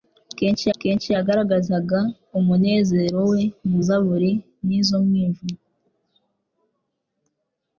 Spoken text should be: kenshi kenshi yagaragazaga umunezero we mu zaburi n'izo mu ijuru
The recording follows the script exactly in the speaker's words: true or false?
true